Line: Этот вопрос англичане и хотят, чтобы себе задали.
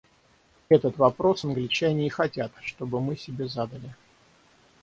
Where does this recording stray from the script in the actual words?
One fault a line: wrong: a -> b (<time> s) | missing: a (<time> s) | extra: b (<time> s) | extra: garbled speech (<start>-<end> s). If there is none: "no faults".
extra: мы (3.0 s)